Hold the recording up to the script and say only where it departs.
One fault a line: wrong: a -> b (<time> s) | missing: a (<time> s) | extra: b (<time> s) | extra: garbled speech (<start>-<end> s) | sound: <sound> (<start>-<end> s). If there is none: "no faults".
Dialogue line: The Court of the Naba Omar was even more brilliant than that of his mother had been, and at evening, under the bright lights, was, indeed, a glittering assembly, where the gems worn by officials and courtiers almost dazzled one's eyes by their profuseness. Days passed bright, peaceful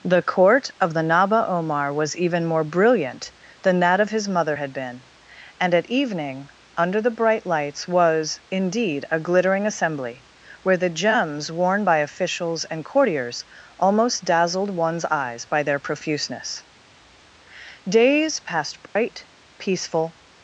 sound: dropout (18.9-19.0 s)